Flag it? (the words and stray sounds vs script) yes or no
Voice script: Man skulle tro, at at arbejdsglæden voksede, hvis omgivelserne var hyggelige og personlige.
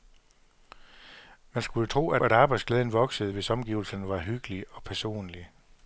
no